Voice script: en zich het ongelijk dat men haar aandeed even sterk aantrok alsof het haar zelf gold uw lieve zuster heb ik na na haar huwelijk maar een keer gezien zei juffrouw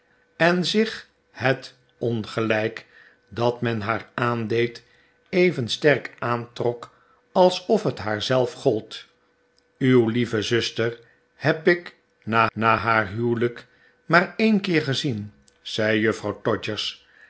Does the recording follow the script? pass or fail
pass